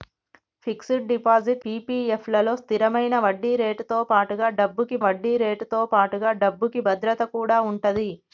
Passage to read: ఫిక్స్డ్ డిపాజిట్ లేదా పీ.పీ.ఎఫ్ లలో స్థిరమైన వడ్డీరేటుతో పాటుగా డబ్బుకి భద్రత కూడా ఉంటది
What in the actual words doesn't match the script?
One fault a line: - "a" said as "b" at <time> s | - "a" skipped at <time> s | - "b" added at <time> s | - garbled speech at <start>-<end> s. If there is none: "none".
- "లేదా" skipped at 1.6 s
- "వడ్డీరేటుతో పాటుగా డబ్బుకి" added at 5.0 s